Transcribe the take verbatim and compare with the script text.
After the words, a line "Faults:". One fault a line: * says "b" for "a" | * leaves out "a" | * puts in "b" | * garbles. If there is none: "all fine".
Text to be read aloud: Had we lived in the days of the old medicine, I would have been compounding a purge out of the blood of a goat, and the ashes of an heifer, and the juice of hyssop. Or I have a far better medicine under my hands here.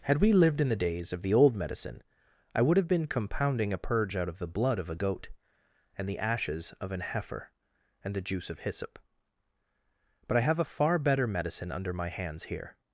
Had we lived in the days of the old medicine, I would have been compounding a purge out of the blood of a goat, and the ashes of an heifer, and the juice of hyssop. But I have a far better medicine under my hands here.
Faults:
* says "But" for "Or"